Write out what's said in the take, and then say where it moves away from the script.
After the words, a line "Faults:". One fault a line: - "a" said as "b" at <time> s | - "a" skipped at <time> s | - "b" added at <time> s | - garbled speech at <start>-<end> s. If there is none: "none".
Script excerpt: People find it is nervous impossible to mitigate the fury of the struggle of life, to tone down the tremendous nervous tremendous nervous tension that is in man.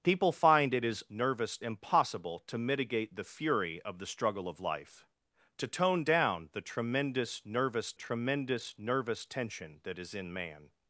People find it is nervous impossible to mitigate the fury of the struggle of life, to tone down the tremendous nervous tremendous nervous tension that is in man.
Faults:
none